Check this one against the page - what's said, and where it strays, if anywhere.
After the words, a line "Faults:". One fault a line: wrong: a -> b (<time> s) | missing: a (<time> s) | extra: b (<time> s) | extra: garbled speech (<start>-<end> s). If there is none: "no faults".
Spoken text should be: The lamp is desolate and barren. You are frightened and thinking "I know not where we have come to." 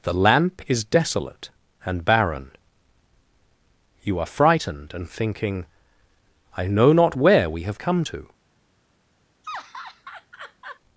The lamp is desolate and barren. You are frightened and thinking "I know not where we have come to."
Faults:
no faults